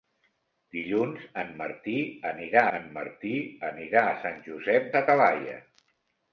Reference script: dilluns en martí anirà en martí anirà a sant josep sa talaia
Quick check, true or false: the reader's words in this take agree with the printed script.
true